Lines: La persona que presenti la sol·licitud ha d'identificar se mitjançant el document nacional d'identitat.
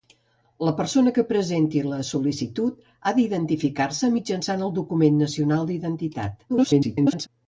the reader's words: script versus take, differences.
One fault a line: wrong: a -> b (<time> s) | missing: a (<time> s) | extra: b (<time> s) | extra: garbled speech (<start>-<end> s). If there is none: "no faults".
extra: garbled speech (6.5-7.3 s)